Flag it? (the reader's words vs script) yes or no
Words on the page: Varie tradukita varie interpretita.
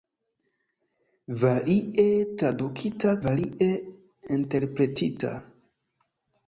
no